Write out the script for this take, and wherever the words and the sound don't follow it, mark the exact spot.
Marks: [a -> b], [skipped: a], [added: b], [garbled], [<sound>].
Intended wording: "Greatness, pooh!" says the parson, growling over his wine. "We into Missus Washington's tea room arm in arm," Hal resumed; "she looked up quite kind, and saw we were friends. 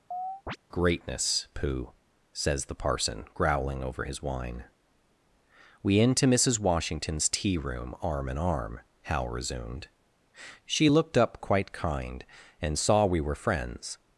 [chirp] "Greatness, pooh!" says the parson, growling over his wine. "We into Missus Washington's tea room arm in arm," Hal resumed; "she looked up quite kind, and saw we were friends.